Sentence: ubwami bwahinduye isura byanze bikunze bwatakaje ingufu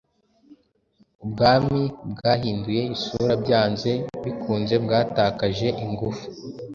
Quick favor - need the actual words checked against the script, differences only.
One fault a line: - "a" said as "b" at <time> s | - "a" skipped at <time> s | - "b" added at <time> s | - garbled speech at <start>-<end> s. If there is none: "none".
none